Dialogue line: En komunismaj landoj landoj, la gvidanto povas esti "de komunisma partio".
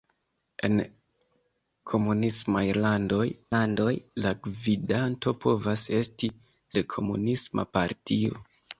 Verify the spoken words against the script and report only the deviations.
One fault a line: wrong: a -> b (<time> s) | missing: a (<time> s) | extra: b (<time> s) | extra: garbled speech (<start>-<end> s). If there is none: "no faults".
no faults